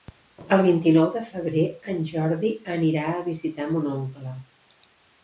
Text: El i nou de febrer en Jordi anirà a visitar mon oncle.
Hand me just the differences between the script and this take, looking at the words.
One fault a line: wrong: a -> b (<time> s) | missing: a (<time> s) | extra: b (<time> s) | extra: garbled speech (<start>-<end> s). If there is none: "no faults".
extra: vint (0.7 s)